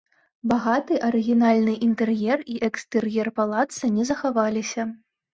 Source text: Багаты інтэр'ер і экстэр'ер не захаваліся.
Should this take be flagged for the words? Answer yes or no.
yes